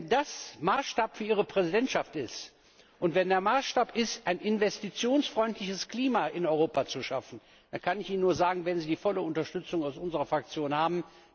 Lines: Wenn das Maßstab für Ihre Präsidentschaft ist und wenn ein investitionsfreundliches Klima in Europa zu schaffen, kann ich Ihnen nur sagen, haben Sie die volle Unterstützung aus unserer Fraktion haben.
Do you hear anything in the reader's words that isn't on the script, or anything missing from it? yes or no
yes